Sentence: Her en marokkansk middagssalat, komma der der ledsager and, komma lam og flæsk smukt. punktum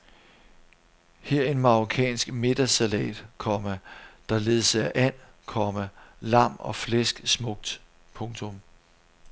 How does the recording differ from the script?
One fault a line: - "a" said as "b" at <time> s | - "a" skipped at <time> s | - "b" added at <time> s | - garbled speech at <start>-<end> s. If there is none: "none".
- "der" skipped at 4.4 s